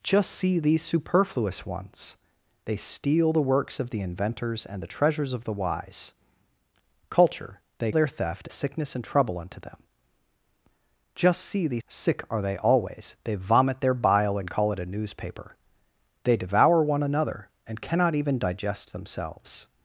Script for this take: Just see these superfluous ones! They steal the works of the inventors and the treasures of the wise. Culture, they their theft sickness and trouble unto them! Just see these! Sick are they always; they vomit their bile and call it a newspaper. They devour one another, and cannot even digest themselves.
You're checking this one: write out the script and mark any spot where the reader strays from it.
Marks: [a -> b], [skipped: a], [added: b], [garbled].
Just see these superfluous ones! They steal the works of the inventors and the treasures of the wise. Culture, they their theft sickness and trouble unto them! Just see these! Sick are they always; they vomit their bile and call it a newspaper. They devour one another, and cannot even digest themselves.